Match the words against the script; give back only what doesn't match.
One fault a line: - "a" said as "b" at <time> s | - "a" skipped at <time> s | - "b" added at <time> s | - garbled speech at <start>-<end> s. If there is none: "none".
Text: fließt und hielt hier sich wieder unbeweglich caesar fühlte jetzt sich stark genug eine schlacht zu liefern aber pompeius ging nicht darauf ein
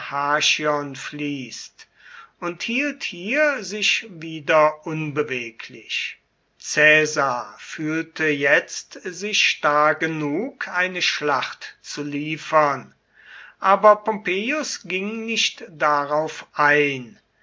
none